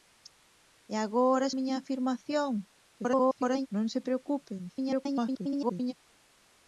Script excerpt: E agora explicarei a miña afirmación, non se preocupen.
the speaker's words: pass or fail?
fail